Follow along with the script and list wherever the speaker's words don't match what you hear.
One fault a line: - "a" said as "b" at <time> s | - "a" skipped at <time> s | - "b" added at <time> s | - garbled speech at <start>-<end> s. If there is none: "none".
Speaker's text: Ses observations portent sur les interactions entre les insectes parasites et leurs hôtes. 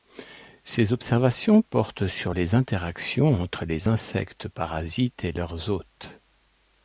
none